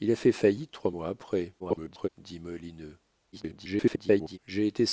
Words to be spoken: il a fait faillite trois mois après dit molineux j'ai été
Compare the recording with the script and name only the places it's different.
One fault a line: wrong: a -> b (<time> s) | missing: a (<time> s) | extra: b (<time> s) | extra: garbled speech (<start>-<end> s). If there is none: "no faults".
extra: garbled speech (1.6-2.1 s)
extra: garbled speech (3.3-4.4 s)